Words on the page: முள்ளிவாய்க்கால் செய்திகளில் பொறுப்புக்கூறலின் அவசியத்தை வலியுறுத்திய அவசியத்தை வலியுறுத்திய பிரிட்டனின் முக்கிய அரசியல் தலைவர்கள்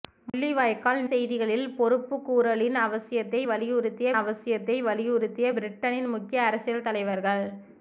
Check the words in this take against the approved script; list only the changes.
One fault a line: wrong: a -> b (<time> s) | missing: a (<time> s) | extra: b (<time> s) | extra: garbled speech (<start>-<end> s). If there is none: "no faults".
no faults